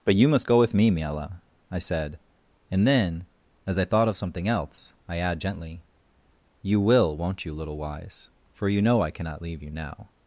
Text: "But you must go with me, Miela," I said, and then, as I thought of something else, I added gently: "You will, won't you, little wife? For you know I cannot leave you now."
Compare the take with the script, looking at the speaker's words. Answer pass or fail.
fail